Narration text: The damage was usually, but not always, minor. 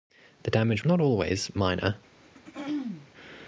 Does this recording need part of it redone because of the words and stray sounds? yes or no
yes